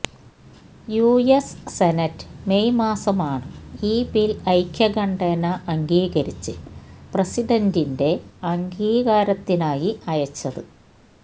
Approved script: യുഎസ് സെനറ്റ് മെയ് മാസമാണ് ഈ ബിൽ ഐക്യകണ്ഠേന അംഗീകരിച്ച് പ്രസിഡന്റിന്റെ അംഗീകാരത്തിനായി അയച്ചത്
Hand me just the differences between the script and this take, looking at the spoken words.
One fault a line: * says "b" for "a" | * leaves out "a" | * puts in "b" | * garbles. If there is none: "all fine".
all fine